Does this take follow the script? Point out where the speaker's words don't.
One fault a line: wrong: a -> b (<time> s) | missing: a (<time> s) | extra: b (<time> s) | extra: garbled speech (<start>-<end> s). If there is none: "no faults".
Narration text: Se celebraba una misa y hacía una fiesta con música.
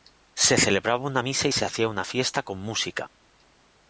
extra: se (1.5 s)